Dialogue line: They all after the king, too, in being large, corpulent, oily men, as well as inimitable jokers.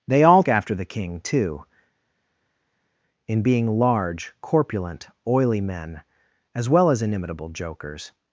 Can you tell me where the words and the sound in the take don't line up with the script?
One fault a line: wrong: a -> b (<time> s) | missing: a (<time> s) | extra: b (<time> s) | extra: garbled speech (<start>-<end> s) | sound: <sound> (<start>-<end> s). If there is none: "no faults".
no faults